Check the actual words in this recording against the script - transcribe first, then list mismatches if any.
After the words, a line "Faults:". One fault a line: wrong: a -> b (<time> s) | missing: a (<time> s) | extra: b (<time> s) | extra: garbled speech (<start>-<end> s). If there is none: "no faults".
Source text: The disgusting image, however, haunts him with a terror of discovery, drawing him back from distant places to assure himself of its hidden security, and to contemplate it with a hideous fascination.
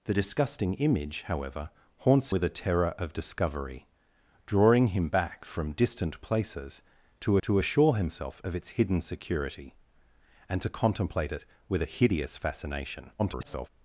The disgusting image, however, haunts with a terror of discovery, drawing him back from distant places to to assure himself of its hidden security, and to contemplate it with a hideous fascination. [garbled]
Faults:
missing: him (2.3 s)
extra: to (7.4 s)
extra: garbled speech (13.2-13.7 s)